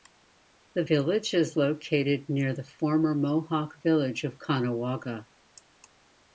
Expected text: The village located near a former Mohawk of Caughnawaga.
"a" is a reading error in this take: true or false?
true